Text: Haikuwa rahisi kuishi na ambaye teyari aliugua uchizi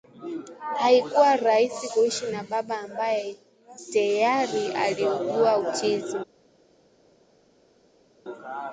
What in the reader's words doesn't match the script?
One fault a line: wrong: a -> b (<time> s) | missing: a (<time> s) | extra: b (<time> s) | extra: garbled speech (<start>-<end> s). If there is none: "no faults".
extra: baba (2.4 s)